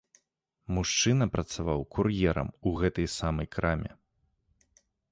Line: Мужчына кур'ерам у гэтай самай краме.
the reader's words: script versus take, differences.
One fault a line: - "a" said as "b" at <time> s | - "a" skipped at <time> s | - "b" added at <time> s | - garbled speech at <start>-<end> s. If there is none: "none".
- "працаваў" added at 1.4 s